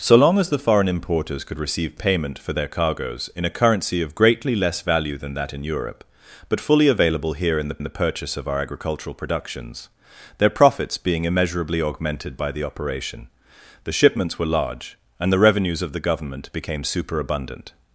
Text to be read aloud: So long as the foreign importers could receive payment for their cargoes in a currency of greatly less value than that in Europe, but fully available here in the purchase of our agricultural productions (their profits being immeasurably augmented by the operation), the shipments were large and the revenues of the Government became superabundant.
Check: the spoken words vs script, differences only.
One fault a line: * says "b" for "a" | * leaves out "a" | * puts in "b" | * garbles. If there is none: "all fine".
* puts in "the"